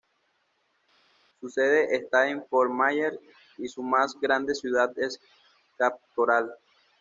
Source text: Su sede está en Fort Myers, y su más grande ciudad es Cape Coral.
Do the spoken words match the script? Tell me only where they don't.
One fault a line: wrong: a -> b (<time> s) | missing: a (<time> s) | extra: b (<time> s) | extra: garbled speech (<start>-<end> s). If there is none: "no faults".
no faults